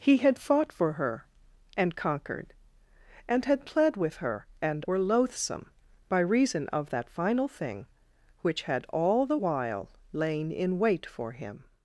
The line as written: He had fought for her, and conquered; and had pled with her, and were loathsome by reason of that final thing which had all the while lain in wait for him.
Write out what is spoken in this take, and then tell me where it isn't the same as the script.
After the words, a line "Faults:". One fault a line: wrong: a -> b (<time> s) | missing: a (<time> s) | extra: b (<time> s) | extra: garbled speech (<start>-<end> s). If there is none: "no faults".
He had fought for her, and conquered; and had pled with her, and were loathsome by reason of that final thing which had all the while lain in wait for him.
Faults:
no faults